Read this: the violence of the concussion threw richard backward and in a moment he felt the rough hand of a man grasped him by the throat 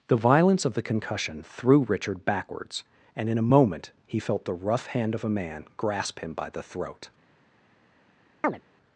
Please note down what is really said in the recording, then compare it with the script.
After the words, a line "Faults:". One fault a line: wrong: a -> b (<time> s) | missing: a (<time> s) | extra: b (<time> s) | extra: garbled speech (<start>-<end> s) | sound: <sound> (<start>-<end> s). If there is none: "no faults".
the violence of the concussion threw richard backwards and in a moment he felt the rough hand of a man grasp him by the throat
Faults:
wrong: backward -> backwards (2.2 s)
wrong: grasped -> grasp (5.8 s)
sound: chirp (8.4-8.6 s)